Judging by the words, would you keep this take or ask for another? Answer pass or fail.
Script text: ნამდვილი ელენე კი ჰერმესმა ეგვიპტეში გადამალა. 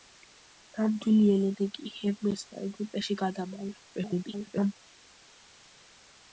fail